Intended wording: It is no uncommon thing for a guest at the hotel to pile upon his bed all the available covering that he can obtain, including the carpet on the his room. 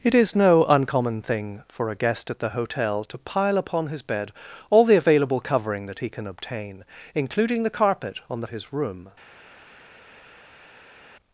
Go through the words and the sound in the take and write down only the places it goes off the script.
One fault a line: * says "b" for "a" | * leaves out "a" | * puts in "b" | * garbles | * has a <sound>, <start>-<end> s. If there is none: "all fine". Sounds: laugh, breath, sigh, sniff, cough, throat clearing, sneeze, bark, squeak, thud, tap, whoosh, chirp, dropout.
all fine